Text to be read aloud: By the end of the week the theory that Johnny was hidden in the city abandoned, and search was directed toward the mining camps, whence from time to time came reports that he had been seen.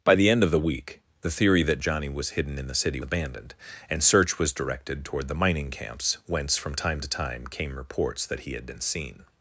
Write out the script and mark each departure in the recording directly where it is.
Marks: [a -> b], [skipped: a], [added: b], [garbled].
By the end of the week the theory that Johnny was hidden in the city abandoned, and search was directed toward the mining camps, whence from time to time came reports that he had been seen.